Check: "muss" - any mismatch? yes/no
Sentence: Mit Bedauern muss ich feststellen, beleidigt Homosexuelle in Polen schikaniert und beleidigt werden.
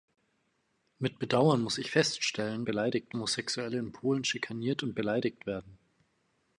no